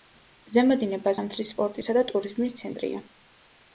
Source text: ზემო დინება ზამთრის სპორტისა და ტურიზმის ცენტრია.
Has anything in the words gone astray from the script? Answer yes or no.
no